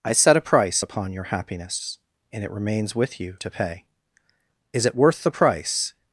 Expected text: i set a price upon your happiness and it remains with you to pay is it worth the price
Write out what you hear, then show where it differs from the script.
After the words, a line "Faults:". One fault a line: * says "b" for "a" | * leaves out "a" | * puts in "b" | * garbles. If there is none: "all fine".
i set a price upon your happiness and it remains with you to pay is it worth the price
Faults:
all fine